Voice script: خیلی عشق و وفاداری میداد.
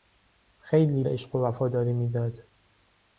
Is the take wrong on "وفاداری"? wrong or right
right